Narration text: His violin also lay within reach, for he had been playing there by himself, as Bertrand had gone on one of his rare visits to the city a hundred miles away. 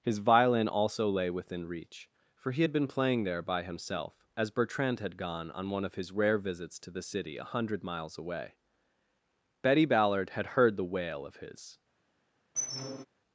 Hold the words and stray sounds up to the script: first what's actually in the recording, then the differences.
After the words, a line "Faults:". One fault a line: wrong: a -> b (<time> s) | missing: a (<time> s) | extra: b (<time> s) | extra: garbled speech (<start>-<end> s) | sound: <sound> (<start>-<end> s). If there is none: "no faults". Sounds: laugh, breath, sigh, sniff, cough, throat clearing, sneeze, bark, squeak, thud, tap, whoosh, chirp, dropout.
His violin also lay within reach, for he had been playing there by himself, as Bertrand had gone on one of his rare visits to the city a hundred miles away. Betty Ballard had heard the wail of his
Faults:
extra: Betty Ballard had heard the wail of his (9.6 s)
sound: squeak (12.6-13.1 s)